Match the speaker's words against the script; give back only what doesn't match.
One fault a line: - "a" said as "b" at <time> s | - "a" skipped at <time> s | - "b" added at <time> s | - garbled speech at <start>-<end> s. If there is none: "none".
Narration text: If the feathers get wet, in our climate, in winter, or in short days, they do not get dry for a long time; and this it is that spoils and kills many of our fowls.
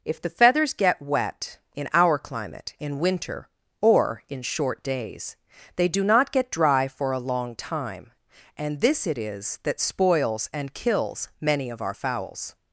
none